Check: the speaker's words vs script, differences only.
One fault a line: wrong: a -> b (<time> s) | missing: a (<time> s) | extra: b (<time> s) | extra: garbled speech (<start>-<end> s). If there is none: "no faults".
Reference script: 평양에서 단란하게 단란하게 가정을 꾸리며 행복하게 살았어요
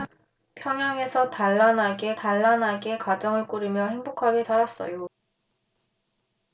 no faults